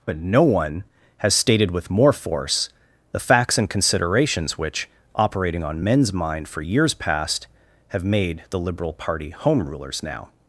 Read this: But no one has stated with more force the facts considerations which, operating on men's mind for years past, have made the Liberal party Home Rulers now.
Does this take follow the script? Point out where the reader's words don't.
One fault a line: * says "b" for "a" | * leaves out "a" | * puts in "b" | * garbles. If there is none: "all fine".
* puts in "and"